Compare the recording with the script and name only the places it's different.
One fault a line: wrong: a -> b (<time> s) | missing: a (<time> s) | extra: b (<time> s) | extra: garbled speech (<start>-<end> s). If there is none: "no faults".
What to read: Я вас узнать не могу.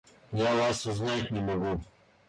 no faults